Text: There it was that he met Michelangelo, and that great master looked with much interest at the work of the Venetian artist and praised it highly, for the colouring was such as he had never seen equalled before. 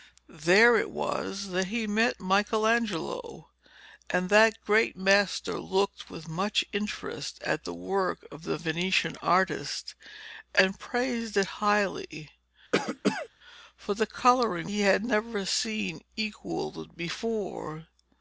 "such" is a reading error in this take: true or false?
true